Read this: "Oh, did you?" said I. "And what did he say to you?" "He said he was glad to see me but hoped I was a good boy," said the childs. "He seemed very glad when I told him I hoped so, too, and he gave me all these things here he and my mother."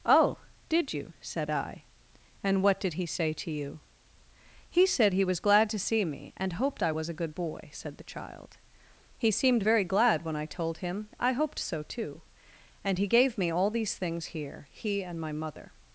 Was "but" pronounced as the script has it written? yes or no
no